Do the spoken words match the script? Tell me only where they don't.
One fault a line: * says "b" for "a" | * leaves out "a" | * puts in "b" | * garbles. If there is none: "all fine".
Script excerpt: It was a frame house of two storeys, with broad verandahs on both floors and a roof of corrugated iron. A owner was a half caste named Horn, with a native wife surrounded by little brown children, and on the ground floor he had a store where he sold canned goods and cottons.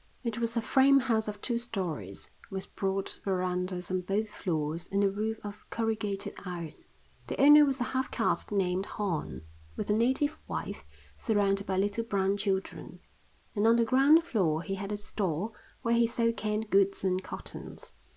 * says "The" for "A"